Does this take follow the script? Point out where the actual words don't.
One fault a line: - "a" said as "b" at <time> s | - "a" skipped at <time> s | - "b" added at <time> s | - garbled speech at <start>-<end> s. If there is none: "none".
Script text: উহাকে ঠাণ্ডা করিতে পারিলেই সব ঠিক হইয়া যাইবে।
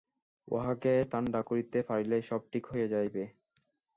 none